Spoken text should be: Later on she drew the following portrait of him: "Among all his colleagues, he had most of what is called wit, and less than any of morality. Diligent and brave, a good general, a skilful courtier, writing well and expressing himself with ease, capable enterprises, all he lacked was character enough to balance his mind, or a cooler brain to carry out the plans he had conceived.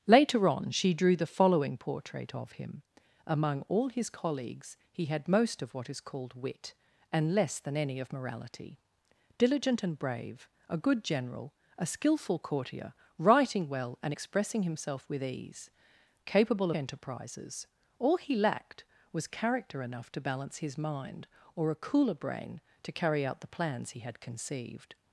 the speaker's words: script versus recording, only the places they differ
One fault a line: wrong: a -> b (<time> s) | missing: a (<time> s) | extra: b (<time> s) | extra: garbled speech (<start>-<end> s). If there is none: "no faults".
no faults